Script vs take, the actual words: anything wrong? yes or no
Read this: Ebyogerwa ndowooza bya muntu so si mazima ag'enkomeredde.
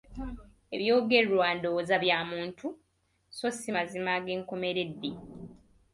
no